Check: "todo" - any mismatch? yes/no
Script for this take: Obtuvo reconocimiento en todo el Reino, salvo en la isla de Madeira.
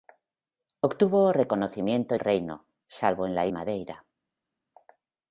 yes